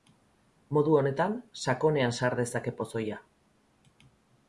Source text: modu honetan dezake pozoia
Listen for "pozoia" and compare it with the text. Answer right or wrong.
right